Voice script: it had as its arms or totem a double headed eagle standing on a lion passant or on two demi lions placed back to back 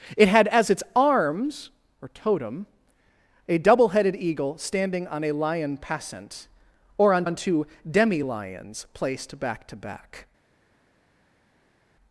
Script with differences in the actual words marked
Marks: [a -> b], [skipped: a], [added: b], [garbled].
it had as its arms or totem a double headed eagle standing on a lion passant or on [added: on] two demi lions placed back to back